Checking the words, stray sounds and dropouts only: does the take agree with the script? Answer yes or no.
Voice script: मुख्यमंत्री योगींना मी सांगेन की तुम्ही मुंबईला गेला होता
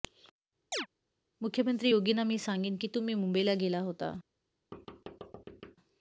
no